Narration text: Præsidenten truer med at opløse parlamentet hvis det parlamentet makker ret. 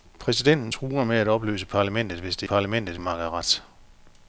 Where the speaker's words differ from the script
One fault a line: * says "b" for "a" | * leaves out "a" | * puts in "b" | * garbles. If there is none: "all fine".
all fine